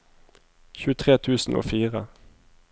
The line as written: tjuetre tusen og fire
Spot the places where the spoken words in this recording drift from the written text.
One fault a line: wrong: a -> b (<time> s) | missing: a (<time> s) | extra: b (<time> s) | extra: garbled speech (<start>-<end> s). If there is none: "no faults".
no faults